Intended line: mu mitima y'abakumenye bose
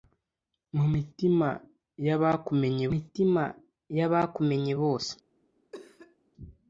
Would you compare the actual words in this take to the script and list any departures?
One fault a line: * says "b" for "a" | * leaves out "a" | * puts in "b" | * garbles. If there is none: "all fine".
* puts in "mitima y'abakumenye"